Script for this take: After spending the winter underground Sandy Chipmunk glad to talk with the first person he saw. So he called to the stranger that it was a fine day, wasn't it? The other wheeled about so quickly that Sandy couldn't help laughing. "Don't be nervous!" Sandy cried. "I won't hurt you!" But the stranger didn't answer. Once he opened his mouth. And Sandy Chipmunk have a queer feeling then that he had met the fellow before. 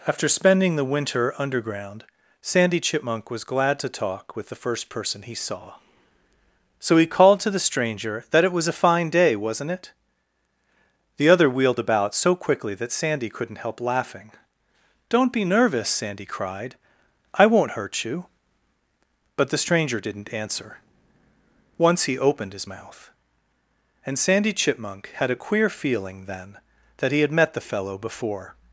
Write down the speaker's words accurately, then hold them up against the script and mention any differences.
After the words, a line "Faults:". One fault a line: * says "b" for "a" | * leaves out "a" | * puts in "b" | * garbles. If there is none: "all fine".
After spending the winter underground Sandy Chipmunk was glad to talk with the first person he saw. So he called to the stranger that it was a fine day, wasn't it? The other wheeled about so quickly that Sandy couldn't help laughing. "Don't be nervous!" Sandy cried. "I won't hurt you!" But the stranger didn't answer. Once he opened his mouth. And Sandy Chipmunk had a queer feeling then that he had met the fellow before.
Faults:
* puts in "was"
* says "had" for "have"